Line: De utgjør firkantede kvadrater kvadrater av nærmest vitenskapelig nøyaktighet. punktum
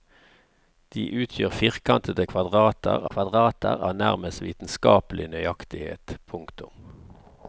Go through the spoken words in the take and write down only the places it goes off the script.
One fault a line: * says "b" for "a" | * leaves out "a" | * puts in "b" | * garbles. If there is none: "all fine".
all fine